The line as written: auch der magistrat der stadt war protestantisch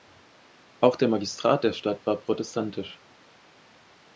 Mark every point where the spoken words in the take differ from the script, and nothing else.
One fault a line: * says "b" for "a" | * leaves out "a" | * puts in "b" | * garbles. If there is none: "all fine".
all fine